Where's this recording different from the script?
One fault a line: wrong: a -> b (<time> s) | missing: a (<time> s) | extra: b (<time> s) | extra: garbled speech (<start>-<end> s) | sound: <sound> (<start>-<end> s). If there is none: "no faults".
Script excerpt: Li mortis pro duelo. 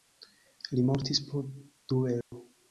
sound: dropout (2.2-2.3 s)